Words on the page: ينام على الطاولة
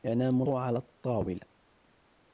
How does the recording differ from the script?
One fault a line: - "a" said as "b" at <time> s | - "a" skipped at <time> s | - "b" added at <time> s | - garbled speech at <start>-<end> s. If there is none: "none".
none